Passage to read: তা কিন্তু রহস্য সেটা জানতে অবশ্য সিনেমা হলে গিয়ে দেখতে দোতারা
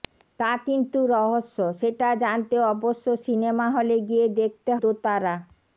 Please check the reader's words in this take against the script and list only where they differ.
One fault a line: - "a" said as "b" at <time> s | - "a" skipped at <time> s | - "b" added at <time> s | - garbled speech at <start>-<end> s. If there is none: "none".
none